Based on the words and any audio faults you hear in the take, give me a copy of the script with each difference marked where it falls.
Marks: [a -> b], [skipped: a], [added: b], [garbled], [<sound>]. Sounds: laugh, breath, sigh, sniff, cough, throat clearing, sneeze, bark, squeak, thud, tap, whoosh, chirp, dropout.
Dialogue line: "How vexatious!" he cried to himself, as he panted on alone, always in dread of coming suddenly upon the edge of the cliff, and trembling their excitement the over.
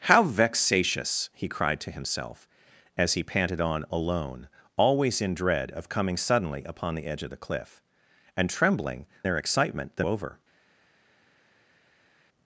"How vexatious!" he cried to himself, as he panted on alone, always in dread of coming suddenly upon the edge of the cliff, and trembling their excitement the over.